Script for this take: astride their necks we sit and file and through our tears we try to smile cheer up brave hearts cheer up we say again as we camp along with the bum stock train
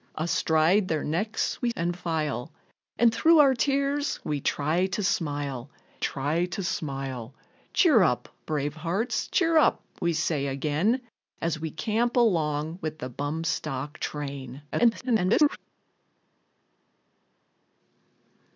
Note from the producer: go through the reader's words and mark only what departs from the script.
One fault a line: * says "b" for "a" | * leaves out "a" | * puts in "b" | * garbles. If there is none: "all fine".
* leaves out "sit"
* puts in "try to smile"
* garbles